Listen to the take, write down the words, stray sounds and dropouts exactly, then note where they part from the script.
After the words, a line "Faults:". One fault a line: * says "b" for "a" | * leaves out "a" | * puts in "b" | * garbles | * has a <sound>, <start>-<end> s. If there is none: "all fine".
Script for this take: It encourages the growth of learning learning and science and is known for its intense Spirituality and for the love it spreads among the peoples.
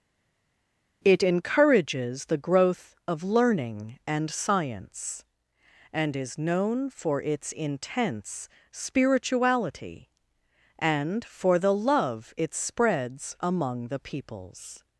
It encourages the growth of learning and science and is known for its intense Spirituality and for the love it spreads among the peoples.
Faults:
* leaves out "learning"